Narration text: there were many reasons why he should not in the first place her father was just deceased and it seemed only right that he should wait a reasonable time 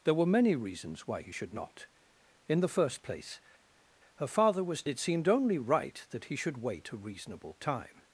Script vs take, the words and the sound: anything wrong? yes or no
yes